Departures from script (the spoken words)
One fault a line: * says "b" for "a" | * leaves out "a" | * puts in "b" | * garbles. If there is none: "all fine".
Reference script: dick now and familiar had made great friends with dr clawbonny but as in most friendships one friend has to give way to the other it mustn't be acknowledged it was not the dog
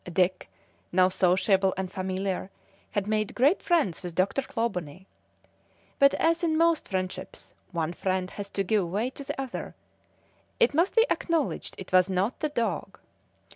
* puts in "sociable"
* says "must" for "mustn't"